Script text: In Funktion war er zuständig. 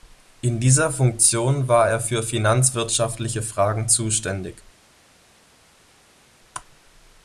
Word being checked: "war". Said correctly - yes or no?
yes